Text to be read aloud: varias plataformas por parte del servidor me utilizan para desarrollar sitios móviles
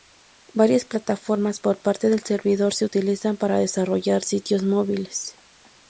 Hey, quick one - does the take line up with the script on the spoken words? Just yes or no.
no